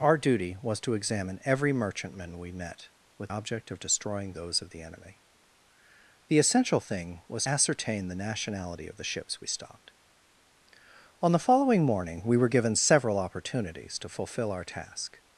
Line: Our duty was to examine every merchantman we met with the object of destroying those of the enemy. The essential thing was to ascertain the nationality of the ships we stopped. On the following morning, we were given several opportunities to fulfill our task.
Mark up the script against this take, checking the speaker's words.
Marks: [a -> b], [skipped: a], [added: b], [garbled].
Our duty was to examine every merchantman we met with [skipped: the] object of destroying those of the enemy. The essential thing was [skipped: to] ascertain the nationality of the ships we stopped. On the following morning, we were given several opportunities to fulfill our task.